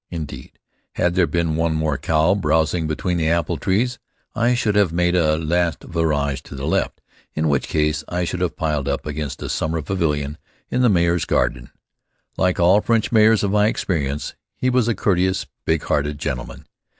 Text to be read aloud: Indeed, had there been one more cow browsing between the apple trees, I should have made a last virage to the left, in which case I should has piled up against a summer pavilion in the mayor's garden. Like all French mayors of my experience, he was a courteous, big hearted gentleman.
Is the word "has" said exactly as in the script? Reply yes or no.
no